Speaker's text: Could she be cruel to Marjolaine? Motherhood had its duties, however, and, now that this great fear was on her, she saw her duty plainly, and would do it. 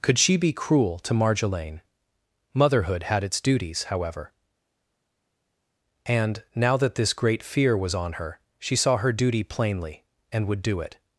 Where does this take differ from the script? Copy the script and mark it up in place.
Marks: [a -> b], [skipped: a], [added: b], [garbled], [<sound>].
Could she be cruel to Marjolaine? Motherhood had its duties, however, and, now that this great fear was on her, she saw her duty plainly, and would do it.